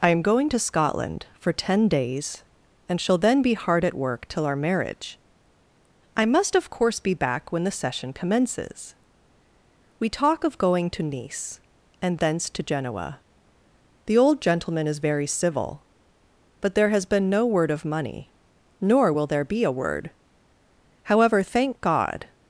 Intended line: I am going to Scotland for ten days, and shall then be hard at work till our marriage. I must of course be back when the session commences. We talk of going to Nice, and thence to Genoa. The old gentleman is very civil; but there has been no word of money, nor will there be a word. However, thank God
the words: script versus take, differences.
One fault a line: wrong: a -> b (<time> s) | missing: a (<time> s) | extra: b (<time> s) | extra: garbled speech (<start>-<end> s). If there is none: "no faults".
no faults